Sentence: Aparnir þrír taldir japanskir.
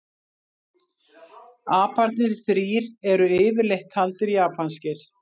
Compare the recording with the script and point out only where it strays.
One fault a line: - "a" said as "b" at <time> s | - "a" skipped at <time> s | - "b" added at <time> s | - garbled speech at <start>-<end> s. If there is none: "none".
- "eru yfirleitt" added at 3.2 s